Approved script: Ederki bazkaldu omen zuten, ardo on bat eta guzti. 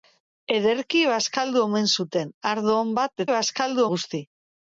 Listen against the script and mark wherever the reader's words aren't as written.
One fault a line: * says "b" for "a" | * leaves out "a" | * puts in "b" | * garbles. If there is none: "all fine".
* says "bazkaldu" for "eta"